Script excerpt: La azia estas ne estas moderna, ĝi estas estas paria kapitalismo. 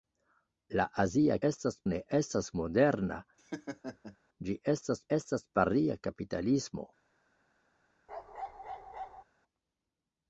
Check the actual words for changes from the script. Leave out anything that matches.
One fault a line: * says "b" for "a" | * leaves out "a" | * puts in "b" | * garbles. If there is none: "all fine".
all fine